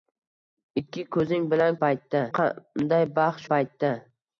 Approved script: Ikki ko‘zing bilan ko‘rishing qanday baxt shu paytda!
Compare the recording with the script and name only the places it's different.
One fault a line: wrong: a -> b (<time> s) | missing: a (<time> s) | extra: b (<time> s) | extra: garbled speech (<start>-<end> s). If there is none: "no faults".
wrong: ko‘rishing -> paytda (1.9 s)
missing: shu (3.5 s)